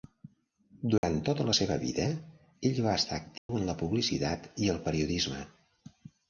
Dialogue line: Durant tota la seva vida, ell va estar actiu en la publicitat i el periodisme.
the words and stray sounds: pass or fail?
fail